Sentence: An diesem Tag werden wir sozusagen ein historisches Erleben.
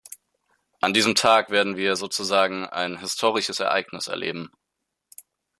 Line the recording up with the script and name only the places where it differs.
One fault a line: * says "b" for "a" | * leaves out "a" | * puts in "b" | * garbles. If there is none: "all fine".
* puts in "Ereignis"